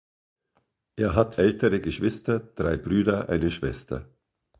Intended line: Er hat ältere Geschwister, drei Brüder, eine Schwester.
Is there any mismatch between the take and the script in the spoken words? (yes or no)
no